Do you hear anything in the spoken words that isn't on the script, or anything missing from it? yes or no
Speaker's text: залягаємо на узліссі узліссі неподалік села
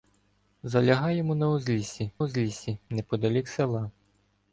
no